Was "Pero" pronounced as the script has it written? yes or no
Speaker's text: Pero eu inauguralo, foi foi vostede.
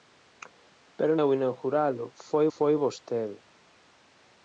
yes